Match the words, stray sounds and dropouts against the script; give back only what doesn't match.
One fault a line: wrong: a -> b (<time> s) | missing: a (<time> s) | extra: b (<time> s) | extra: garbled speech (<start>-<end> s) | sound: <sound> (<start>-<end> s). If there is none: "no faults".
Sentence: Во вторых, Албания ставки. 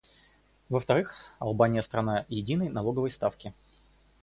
extra: страна единой налоговой (1.8 s)